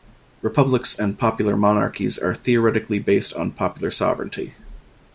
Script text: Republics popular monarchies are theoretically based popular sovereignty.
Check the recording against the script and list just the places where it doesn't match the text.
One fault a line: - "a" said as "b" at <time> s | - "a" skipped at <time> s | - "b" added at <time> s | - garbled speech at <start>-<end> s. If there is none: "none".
- "and" added at 1.0 s
- "on" added at 3.4 s